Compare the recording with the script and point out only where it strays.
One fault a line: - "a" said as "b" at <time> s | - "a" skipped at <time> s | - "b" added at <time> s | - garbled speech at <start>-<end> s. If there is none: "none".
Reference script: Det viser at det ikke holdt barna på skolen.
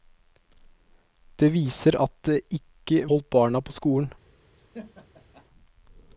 none